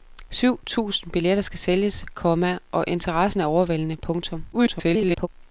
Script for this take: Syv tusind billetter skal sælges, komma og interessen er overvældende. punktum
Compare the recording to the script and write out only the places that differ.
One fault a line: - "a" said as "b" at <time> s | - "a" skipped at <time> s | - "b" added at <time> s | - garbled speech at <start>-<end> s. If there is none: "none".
- garbled speech at 4.5-5.3 s